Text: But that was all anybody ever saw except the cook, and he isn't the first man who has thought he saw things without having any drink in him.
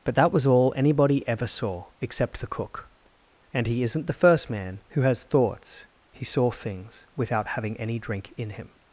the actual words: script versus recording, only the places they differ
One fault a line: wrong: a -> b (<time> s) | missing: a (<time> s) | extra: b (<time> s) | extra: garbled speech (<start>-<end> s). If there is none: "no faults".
wrong: thought -> thoughts (5.2 s)